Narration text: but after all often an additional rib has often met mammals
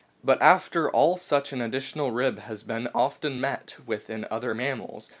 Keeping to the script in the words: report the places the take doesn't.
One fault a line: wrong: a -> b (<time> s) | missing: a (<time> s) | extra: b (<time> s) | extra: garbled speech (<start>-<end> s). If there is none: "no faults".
wrong: often -> such (1.2 s)
extra: been (2.6 s)
extra: with in other (3.9 s)